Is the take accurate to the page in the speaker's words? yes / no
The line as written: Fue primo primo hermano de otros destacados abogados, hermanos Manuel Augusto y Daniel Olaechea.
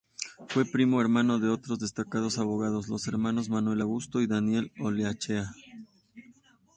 no